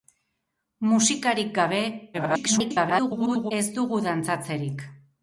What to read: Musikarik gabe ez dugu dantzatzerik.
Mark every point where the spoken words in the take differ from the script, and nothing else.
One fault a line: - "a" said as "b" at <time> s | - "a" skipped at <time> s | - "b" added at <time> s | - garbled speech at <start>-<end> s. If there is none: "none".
- garbled speech at 2.1-3.5 s